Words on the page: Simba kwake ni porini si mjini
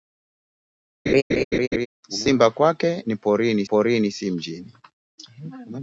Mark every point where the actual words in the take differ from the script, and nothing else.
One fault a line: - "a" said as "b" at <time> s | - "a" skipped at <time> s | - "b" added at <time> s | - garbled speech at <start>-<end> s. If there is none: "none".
- "porini" added at 3.6 s